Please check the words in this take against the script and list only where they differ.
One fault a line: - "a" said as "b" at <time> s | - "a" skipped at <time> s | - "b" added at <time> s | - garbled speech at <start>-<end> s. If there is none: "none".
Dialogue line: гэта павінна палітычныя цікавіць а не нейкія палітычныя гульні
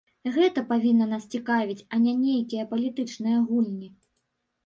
- "палітычныя" said as "нас" at 1.1 s